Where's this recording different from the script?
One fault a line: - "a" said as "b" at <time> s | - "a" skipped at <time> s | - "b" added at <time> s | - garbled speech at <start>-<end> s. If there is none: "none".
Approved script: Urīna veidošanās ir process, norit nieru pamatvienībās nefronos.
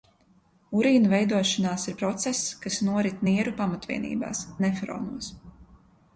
- "kas" added at 2.7 s